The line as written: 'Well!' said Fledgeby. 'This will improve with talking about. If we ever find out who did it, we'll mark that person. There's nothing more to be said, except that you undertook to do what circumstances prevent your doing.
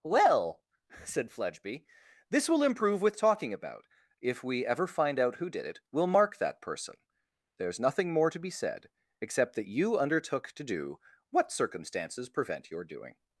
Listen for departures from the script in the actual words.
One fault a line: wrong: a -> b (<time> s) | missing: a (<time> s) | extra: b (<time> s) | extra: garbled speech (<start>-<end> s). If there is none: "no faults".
no faults